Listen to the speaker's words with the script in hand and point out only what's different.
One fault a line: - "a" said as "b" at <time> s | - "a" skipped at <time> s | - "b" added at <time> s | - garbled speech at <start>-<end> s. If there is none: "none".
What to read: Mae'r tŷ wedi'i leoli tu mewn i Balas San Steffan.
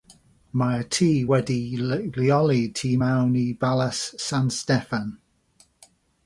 none